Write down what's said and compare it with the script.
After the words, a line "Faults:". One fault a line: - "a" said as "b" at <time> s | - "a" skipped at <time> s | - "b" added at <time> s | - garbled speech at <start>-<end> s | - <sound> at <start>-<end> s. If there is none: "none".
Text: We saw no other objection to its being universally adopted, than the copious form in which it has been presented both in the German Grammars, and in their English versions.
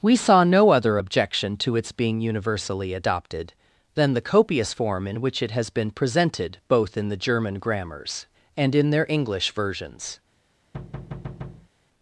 We saw no other objection to its being universally adopted, than the copious form in which it has been presented both in the German Grammars, and in their English versions.
Faults:
- thud at 10.7-11.7 s